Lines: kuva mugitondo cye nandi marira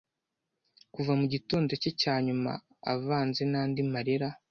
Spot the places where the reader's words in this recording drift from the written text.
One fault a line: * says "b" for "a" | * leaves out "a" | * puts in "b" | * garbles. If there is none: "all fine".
* puts in "cyanyuma avanze"